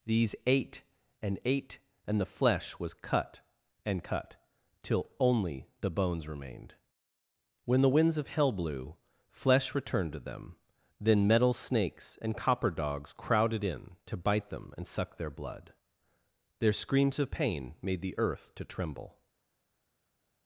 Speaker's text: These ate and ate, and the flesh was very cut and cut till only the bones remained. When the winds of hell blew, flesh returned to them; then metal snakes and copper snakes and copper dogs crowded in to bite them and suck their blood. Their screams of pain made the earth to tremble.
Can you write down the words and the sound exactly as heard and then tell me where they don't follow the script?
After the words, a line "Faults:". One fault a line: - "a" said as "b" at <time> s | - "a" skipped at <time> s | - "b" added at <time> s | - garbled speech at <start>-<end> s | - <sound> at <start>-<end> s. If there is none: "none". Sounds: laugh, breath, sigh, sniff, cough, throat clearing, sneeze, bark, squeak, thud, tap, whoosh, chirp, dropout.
These ate and ate, and the flesh was cut and cut till only the bones remained. When the winds of hell blew, flesh returned to them; then metal snakes and copper dogs crowded in to bite them and suck their blood. Their screams of pain made the earth to tremble.
Faults:
- "very" skipped at 3.0 s
- "snakes and copper" skipped at 12.7 s